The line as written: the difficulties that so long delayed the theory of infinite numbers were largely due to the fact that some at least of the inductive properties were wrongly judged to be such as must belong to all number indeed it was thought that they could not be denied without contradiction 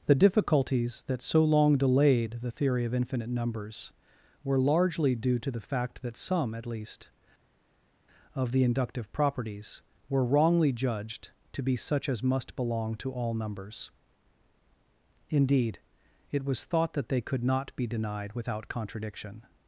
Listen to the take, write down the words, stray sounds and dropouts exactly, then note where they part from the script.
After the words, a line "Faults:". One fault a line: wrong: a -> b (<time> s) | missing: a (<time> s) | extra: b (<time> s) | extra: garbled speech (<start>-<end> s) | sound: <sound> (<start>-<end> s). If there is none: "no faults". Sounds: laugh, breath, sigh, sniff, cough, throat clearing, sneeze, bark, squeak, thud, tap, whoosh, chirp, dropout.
the difficulties that so long delayed the theory of infinite numbers were largely due to the fact that some at least of the inductive properties were wrongly judged to be such as must belong to all numbers indeed it was thought that they could not be denied without contradiction
Faults:
wrong: number -> numbers (13.4 s)